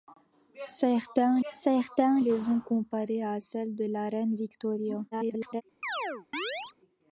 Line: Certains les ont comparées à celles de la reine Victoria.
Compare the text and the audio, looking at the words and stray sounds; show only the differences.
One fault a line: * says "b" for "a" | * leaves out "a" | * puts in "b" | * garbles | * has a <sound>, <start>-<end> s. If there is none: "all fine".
* puts in "certains"
* garbles
* has a chirp, 5.8-6.7 s